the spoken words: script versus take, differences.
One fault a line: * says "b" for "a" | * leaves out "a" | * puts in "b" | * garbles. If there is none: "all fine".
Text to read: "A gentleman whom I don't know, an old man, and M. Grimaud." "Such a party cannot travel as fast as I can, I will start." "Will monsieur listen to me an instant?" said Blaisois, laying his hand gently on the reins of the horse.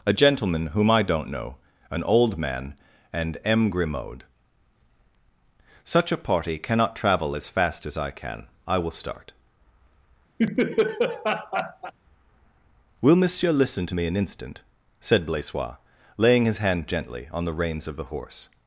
all fine